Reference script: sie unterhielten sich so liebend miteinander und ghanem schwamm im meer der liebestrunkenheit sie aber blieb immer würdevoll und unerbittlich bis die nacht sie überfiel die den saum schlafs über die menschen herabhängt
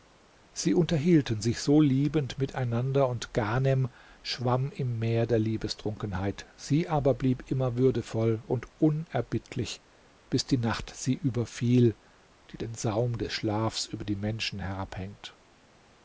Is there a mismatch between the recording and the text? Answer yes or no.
yes